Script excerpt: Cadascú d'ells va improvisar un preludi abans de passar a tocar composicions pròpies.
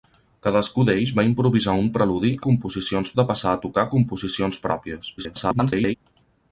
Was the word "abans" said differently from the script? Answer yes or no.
yes